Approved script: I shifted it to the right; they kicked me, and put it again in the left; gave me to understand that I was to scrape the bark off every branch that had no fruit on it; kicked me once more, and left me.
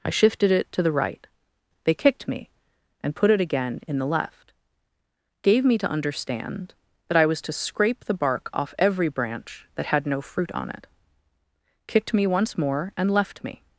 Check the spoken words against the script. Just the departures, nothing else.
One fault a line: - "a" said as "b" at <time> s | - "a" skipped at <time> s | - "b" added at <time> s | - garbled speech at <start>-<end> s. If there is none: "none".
none